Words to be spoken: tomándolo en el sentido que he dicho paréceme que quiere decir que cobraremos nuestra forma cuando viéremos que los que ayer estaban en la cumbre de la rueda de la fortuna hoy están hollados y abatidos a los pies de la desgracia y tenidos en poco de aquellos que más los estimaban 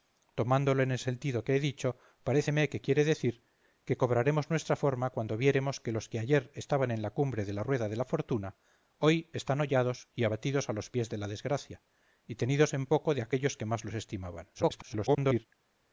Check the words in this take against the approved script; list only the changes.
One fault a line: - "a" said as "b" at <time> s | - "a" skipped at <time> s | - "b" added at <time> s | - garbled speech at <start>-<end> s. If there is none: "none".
- garbled speech at 14.5-15.5 s